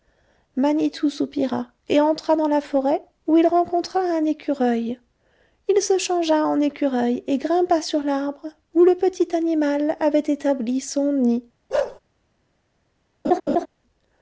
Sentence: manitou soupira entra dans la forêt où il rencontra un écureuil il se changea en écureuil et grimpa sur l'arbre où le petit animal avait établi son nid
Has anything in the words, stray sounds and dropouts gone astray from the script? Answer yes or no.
yes